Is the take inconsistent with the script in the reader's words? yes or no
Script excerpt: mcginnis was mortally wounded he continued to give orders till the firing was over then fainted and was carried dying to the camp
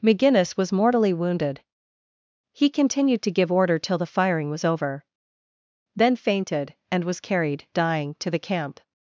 yes